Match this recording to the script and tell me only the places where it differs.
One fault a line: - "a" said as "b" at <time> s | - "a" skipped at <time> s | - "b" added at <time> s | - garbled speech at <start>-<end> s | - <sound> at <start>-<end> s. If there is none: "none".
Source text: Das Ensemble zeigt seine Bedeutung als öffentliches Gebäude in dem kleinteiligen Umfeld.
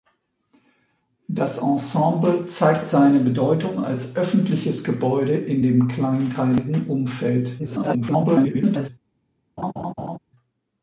- garbled speech at 7.6-8.9 s
- laugh at 9.6-10.2 s